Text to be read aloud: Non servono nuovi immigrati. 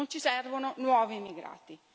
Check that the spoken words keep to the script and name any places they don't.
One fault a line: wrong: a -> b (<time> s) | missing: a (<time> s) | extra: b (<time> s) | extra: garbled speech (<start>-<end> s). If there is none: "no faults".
extra: ci (0.1 s)